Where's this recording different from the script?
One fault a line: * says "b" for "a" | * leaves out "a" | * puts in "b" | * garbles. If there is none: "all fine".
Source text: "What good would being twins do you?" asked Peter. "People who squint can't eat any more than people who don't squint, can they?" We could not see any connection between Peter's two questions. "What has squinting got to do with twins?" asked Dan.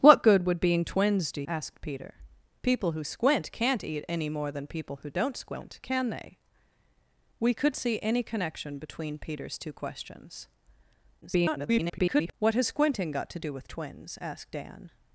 * leaves out "you"
* leaves out "not"
* garbles